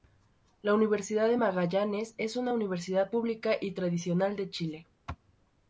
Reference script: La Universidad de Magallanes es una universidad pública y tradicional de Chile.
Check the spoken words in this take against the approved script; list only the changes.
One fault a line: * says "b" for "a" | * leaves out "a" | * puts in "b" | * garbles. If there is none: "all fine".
all fine